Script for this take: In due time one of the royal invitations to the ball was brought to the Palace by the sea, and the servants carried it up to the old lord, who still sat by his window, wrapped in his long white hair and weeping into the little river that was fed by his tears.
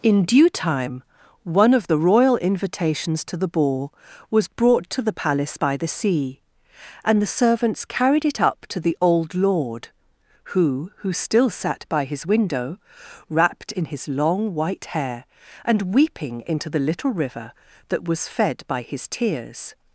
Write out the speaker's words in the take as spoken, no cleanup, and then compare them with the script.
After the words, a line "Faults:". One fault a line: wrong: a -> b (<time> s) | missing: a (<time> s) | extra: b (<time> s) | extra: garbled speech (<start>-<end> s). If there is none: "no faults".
In due time one of the royal invitations to the ball was brought to the Palace by the sea, and the servants carried it up to the old lord, who who still sat by his window, wrapped in his long white hair and weeping into the little river that was fed by his tears.
Faults:
extra: who (11.0 s)